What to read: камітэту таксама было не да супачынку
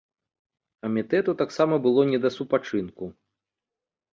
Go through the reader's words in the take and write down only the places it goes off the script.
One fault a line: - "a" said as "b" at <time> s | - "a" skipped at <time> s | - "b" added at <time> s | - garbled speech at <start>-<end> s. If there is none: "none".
none